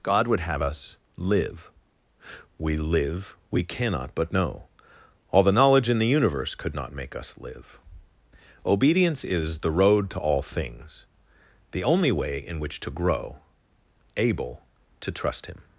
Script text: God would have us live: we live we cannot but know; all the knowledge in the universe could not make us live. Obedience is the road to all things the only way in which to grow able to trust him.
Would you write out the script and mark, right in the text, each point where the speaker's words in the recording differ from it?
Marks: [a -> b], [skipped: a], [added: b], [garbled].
God would have us live: we live we cannot but know; all the knowledge in the universe could not make us live. Obedience is the road to all things the only way in which to grow able to trust him.